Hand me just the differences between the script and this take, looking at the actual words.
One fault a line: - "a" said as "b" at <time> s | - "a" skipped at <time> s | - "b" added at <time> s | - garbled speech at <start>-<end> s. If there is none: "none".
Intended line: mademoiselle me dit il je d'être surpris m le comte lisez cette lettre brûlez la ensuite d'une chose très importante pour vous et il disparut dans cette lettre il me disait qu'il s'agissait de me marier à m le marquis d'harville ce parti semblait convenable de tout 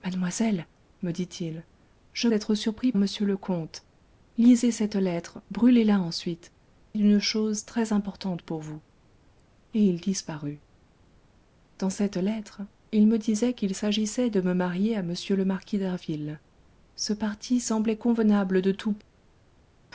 none